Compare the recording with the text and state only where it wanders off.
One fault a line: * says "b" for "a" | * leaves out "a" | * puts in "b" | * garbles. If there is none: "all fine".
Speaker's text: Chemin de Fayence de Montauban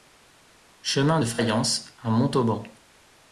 * says "à" for "de"